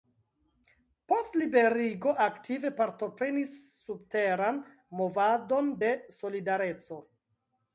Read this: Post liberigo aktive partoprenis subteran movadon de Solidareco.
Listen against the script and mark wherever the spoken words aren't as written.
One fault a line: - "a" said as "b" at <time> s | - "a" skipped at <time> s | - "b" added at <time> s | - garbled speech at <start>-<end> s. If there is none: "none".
none